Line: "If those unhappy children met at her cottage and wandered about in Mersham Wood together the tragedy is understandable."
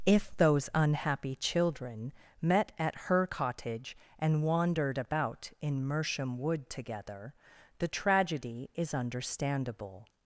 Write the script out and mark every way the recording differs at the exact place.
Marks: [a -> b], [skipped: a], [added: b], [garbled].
"If those unhappy children met at her cottage and wandered about in Mersham Wood together the tragedy is understandable."